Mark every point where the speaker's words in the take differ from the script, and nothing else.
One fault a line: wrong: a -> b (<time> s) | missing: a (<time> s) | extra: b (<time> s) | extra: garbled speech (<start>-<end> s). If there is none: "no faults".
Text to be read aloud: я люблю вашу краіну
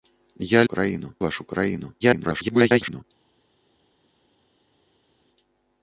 wrong: люблю -> краіну (0.6 s)
extra: garbled speech (2.0-3.0 s)